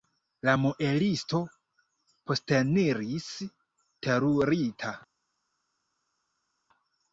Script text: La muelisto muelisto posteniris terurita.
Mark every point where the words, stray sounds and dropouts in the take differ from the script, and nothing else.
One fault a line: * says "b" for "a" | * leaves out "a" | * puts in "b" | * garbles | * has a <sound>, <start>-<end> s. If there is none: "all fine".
* leaves out "muelisto"